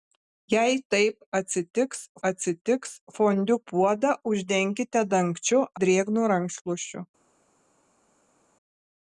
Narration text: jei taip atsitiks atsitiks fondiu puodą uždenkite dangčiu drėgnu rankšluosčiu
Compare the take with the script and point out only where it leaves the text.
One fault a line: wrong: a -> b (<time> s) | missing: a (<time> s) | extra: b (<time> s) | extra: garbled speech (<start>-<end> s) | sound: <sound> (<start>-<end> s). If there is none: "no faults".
no faults